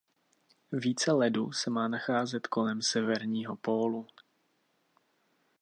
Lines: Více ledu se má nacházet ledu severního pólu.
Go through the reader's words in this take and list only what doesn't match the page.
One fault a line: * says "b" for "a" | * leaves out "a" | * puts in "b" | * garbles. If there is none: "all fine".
* says "kolem" for "ledu"